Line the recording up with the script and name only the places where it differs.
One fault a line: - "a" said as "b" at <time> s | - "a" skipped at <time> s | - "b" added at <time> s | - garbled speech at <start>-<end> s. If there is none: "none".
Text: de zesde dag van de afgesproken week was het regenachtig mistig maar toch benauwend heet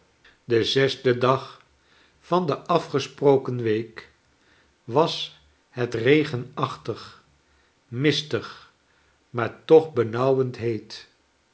none